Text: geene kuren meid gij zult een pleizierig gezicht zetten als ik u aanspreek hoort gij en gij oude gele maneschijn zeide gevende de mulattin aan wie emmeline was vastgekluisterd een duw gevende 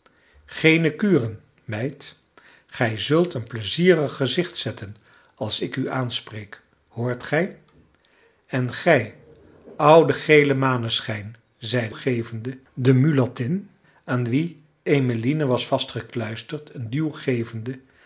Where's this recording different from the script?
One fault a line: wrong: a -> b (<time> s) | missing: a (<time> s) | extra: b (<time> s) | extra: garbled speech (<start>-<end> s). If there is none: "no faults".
no faults